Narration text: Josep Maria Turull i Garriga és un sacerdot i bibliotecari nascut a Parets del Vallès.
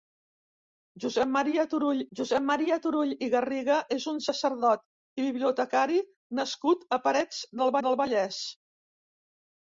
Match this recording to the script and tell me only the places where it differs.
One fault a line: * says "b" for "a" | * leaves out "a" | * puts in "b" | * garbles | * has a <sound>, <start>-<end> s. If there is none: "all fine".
* puts in "josep Maria Turull"
* puts in "del"